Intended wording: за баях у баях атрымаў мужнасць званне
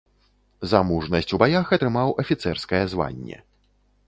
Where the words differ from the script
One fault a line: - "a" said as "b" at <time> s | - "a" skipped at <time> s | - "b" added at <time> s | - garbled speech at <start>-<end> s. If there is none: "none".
- "баях" said as "мужнасць" at 0.9 s
- "мужнасць" said as "афіцэрскае" at 2.2 s